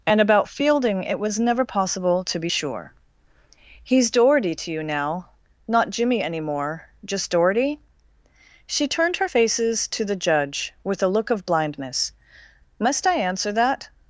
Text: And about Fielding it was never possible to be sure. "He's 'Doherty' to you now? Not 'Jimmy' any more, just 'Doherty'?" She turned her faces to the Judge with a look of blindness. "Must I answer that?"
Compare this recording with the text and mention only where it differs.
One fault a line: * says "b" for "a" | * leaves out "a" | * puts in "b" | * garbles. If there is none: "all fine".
all fine